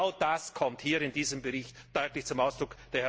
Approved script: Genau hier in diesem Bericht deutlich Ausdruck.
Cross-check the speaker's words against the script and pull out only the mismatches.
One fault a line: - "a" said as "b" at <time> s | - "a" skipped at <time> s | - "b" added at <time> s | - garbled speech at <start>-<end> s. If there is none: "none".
- "das kommt" added at 0.2 s
- "zum" added at 2.2 s